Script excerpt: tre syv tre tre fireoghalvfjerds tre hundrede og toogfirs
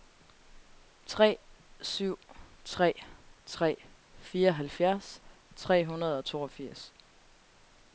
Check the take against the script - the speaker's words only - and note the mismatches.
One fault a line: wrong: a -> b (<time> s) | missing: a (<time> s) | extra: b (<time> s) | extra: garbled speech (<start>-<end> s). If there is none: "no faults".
no faults